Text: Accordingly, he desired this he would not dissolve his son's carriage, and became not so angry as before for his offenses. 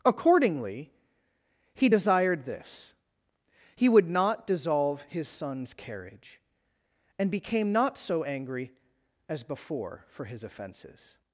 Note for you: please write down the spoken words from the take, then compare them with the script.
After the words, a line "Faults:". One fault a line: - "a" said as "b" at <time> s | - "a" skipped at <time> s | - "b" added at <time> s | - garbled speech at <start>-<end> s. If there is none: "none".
Accordingly, he desired this he would not dissolve his son's carriage, and became not so angry as before for his offenses.
Faults:
none